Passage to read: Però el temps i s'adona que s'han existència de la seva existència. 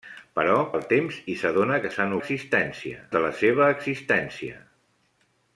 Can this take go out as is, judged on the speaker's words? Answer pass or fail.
pass